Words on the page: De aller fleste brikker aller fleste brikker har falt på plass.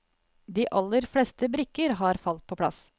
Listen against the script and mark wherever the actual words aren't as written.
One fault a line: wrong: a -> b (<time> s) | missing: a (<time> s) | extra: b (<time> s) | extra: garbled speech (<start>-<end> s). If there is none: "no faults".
missing: aller fleste brikker (1.9 s)